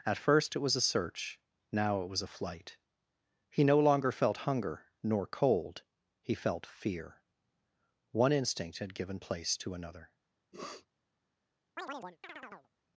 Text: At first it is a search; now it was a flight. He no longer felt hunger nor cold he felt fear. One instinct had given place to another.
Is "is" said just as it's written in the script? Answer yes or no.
no